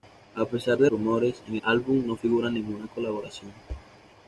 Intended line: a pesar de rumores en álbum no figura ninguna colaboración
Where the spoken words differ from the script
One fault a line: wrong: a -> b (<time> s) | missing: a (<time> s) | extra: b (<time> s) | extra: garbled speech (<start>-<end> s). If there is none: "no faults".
no faults